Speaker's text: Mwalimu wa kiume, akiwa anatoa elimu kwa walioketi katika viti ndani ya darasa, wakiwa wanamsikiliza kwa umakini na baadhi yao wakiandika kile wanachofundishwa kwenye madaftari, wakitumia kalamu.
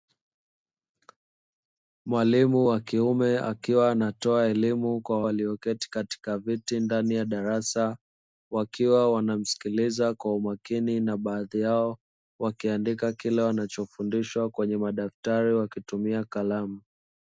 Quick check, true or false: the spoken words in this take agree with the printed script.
true